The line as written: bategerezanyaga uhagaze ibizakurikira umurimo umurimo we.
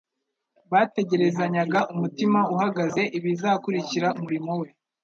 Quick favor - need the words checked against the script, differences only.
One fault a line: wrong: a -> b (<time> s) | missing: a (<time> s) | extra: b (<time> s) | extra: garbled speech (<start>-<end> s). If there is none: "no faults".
extra: umutima (1.9 s)
missing: umurimo (4.5 s)